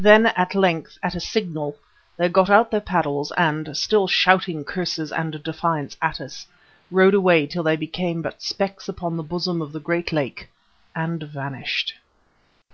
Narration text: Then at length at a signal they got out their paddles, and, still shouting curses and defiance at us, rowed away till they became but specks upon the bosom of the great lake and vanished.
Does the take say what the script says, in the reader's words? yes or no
yes